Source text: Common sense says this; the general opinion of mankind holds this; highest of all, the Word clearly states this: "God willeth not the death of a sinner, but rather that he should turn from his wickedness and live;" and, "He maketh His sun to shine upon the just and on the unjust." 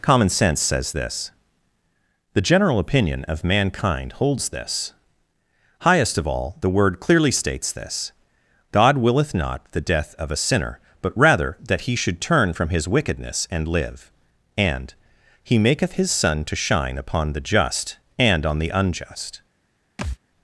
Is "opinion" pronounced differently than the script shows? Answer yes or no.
no